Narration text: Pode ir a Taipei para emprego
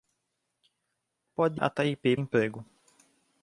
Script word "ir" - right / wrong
wrong